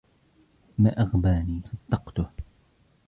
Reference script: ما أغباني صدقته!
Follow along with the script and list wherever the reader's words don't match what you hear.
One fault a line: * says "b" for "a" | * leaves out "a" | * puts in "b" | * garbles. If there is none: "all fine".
all fine